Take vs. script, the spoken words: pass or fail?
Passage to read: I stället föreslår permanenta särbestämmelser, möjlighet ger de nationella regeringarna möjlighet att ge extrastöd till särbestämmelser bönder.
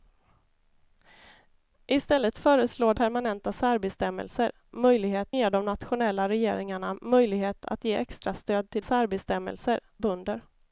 pass